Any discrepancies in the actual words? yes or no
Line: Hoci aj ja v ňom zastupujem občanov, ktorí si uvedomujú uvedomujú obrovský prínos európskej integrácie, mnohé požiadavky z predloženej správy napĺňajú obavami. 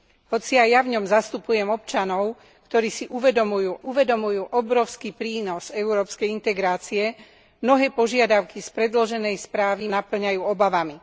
no